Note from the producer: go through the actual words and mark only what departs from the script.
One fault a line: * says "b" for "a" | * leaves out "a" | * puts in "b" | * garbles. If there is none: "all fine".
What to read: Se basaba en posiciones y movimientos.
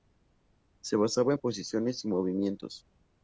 all fine